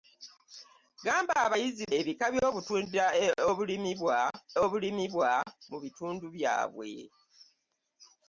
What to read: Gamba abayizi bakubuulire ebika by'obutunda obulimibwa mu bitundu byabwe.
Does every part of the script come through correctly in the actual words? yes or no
no